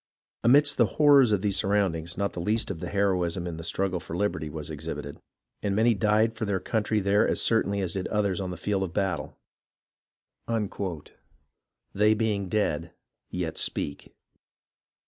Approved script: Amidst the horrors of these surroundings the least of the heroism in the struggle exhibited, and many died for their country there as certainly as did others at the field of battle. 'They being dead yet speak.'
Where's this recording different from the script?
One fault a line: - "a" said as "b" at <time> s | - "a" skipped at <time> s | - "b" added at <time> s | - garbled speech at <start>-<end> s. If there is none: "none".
- "not" added at 2.2 s
- "for liberty was" added at 4.0 s
- "at" said as "on" at 8.4 s